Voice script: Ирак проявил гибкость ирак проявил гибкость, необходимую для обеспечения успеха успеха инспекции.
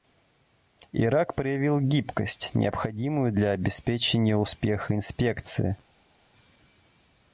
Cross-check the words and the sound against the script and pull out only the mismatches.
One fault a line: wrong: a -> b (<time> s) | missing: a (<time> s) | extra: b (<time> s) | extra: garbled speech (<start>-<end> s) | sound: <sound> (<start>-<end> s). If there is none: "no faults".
missing: ирак проявил гибкость (2.5 s)
missing: успеха (5.0 s)